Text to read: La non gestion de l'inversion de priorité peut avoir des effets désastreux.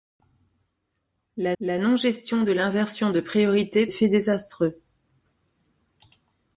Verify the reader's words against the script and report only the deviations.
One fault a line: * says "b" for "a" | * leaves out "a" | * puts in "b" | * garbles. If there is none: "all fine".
* puts in "la"
* leaves out "peut avoir des"